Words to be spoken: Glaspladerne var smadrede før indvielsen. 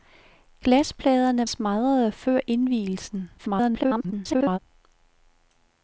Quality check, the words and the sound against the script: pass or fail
fail